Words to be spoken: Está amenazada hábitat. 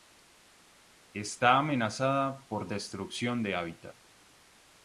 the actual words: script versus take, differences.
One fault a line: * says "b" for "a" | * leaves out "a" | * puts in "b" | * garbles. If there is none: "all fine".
* puts in "por destrucción de"